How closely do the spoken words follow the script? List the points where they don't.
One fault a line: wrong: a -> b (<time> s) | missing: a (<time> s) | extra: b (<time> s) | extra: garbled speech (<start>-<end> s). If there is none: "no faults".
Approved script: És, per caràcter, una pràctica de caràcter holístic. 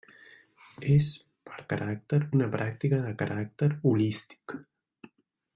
no faults